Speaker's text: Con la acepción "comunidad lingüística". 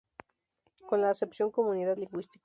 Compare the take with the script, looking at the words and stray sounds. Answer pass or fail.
pass